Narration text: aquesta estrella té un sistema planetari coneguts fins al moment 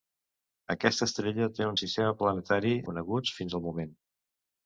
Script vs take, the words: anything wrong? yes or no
no